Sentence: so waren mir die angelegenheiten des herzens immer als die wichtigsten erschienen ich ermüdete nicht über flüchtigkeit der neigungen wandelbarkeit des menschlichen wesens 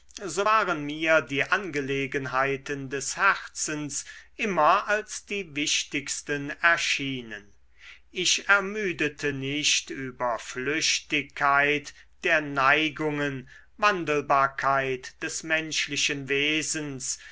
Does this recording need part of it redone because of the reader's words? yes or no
no